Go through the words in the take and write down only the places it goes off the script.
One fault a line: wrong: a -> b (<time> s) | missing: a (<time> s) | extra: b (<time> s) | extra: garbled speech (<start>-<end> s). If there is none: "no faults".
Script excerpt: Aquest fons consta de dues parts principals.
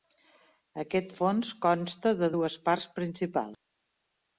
no faults